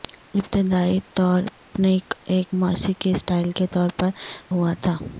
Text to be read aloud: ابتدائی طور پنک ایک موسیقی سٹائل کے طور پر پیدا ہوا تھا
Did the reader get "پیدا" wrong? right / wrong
wrong